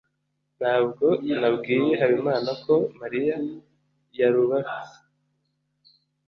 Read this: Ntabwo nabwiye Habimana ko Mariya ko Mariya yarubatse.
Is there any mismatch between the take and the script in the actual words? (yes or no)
yes